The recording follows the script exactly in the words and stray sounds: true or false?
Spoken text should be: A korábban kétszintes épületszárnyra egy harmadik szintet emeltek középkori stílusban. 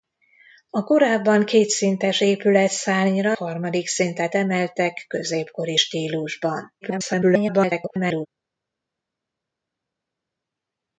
false